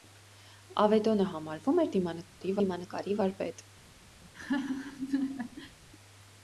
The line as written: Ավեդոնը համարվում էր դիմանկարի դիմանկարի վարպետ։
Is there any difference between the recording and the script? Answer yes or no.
no